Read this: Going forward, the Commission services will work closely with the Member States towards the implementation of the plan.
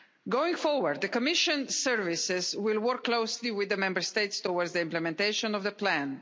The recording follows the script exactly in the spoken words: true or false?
true